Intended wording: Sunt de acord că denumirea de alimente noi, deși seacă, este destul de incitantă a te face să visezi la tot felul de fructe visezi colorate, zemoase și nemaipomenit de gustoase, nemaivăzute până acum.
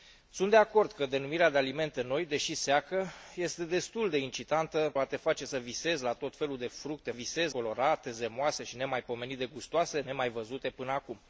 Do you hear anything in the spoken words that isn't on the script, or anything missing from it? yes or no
no